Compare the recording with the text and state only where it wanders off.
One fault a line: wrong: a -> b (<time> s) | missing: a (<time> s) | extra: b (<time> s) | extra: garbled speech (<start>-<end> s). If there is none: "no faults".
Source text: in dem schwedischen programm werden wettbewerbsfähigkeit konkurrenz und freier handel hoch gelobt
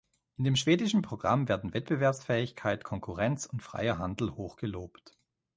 no faults